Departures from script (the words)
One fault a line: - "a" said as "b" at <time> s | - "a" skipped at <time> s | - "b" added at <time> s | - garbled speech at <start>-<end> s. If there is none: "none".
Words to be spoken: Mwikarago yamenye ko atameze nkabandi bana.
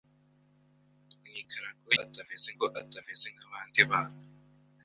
- "yamenye" said as "atameze" at 2.0 s